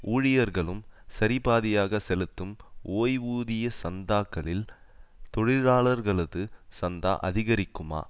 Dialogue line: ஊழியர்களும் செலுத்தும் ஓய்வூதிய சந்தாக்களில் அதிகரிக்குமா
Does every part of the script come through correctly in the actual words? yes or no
no